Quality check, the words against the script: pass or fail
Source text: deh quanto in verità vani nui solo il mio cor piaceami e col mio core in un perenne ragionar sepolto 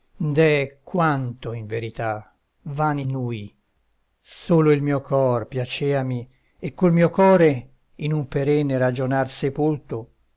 pass